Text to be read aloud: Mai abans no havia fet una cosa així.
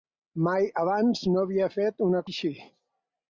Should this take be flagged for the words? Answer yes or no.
yes